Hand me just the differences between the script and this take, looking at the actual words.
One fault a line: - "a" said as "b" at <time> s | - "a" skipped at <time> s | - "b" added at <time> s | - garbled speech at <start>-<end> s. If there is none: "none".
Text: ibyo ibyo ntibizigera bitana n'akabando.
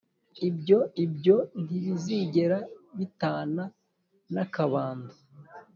none